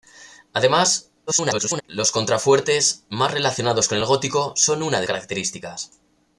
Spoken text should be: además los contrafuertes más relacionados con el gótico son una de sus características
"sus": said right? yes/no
no